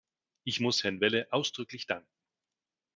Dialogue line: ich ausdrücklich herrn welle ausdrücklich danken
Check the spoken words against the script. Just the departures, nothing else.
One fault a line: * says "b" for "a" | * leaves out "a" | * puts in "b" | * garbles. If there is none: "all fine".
* says "muss" for "ausdrücklich"